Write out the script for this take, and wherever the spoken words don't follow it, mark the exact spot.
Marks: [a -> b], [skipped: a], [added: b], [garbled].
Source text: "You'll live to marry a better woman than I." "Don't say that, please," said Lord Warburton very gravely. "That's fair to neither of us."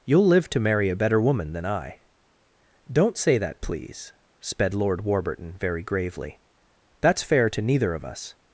"You'll live to marry a better woman than I." "Don't say that, please," [said -> sped] Lord Warburton very gravely. "That's fair to neither of us."